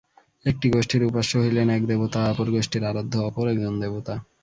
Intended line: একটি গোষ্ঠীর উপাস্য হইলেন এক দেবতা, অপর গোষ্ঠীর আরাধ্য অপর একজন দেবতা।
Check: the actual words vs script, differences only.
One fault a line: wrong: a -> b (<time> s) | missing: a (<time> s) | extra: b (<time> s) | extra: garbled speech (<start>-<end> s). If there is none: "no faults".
no faults